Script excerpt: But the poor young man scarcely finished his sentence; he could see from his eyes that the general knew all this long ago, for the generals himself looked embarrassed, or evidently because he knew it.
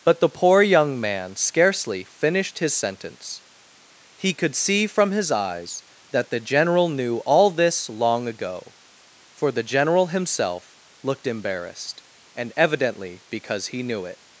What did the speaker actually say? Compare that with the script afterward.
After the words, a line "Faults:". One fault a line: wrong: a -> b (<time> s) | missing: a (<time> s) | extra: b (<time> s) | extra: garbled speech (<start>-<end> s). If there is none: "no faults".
But the poor young man scarcely finished his sentence; he could see from his eyes that the general knew all this long ago, for the general himself looked embarrassed, and evidently because he knew it.
Faults:
wrong: generals -> general (9.6 s)
wrong: or -> and (12.3 s)